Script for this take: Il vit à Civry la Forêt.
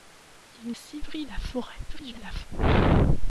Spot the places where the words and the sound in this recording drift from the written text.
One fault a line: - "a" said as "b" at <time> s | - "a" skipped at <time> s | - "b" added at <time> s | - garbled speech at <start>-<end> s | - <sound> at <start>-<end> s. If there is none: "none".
- "vit à" skipped at 0.7 s
- garbled speech at 1.9-2.5 s